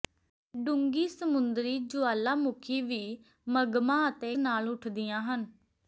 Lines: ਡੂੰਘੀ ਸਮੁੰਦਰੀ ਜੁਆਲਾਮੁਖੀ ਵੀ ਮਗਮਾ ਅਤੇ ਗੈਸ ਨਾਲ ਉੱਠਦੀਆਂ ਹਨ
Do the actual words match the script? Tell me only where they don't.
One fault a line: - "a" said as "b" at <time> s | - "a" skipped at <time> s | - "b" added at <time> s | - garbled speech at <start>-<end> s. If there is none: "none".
- "ਗੈਸ" skipped at 4.3 s